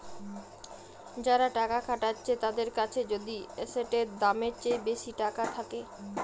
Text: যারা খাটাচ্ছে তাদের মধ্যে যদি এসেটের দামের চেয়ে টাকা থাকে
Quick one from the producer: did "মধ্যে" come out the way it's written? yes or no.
no